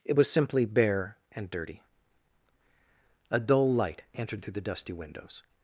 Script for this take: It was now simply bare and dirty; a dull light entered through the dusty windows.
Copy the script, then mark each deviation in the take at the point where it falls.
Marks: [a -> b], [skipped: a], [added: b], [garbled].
It was [skipped: now] simply bare and dirty; a dull light entered through the dusty windows.